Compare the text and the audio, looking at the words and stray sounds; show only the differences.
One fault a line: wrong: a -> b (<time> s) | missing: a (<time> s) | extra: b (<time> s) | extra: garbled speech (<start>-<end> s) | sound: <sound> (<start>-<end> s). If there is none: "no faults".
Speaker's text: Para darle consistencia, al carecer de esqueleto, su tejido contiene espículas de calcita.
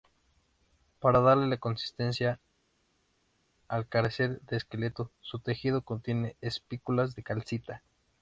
no faults